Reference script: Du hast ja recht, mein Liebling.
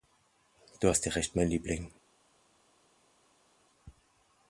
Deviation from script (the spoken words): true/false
false